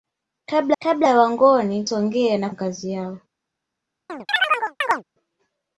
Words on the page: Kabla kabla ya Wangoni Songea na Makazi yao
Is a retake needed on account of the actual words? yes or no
no